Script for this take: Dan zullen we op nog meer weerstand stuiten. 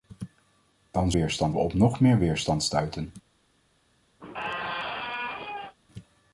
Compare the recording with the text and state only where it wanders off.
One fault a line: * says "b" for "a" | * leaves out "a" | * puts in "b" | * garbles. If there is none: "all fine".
* says "weerstand" for "zullen"